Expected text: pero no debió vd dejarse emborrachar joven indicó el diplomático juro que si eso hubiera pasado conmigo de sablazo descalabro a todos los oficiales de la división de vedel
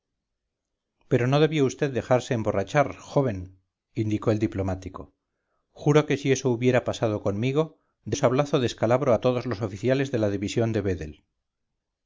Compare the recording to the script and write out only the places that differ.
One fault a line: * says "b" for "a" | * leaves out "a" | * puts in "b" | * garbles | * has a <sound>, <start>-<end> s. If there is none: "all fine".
all fine